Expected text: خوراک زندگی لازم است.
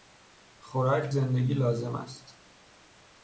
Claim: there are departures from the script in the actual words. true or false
false